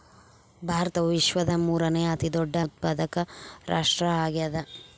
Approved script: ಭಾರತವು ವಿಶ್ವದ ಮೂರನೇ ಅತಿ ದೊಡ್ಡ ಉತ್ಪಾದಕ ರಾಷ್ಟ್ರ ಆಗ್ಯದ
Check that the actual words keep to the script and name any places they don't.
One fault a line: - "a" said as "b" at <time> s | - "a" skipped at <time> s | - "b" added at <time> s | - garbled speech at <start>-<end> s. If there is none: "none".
none